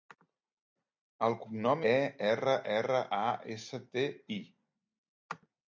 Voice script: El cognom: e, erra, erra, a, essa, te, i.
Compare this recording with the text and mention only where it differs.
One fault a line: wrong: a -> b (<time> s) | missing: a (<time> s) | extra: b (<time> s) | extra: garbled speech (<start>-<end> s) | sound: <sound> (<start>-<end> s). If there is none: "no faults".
no faults